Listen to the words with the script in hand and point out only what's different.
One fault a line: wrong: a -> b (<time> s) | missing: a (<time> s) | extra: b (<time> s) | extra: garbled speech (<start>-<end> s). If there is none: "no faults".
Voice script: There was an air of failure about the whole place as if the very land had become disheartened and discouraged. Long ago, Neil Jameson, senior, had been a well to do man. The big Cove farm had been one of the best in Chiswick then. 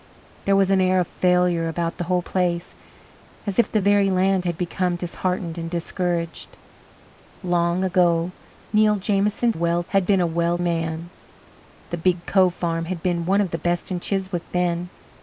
wrong: senior -> well (9.5 s)
missing: to do (10.6 s)